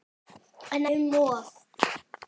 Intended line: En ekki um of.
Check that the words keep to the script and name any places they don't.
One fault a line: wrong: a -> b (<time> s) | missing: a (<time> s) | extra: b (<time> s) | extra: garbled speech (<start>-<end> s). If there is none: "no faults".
missing: ekki (0.8 s)